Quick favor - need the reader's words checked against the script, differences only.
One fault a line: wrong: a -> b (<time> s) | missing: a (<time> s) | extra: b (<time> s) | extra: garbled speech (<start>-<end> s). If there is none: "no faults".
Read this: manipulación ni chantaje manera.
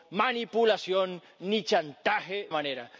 no faults